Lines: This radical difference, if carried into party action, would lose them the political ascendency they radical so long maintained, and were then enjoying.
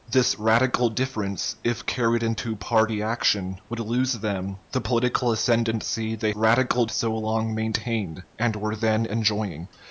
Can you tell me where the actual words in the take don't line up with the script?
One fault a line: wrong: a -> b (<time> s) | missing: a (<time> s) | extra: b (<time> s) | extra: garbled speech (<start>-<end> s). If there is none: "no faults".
no faults